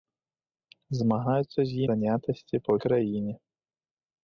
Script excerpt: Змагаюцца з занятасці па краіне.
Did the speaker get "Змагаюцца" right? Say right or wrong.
right